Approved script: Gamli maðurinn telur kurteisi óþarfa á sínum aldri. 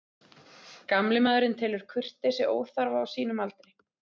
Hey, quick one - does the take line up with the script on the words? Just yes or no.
yes